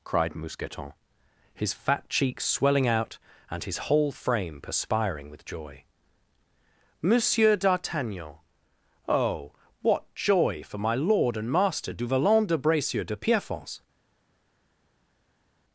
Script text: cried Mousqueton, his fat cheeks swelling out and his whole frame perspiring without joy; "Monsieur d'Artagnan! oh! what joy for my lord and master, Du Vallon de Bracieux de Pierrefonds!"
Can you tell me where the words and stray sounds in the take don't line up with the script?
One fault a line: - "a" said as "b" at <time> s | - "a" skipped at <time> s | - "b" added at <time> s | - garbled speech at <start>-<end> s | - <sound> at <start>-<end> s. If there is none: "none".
- "without" said as "with" at 5.3 s